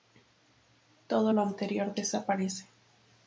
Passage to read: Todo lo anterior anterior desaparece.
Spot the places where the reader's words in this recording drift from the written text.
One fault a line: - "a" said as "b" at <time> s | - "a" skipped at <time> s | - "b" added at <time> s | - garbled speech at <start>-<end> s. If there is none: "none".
- "anterior" skipped at 1.9 s